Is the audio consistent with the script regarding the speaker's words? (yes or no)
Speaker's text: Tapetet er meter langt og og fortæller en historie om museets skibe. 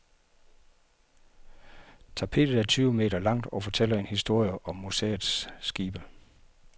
no